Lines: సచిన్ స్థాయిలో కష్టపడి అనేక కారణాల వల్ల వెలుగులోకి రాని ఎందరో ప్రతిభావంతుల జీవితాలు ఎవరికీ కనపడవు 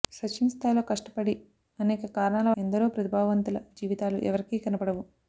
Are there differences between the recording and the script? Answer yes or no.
yes